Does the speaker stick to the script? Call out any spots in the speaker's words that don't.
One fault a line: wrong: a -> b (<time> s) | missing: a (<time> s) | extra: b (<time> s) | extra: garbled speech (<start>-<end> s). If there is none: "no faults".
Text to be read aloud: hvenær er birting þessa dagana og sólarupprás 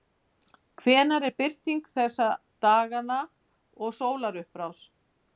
no faults